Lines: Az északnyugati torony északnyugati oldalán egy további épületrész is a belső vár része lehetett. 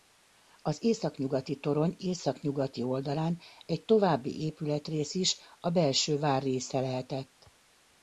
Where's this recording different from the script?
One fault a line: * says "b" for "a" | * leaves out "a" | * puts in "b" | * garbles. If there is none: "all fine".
all fine